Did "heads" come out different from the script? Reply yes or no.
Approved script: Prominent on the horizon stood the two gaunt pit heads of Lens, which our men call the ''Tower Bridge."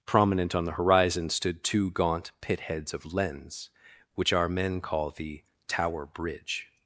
no